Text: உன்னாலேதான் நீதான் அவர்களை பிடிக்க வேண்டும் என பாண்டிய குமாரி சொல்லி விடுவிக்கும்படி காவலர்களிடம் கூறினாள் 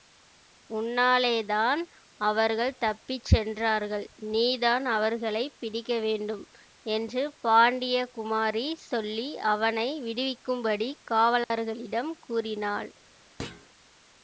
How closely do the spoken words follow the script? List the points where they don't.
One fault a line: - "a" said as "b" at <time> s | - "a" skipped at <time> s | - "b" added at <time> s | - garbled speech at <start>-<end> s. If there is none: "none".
- "அவர்கள் தப்பி சென்றார்கள்" added at 2.2 s
- "என" said as "என்று" at 6.9 s
- "அவனை" added at 9.5 s